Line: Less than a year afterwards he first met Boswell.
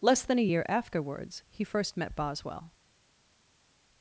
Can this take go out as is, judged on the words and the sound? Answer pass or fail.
pass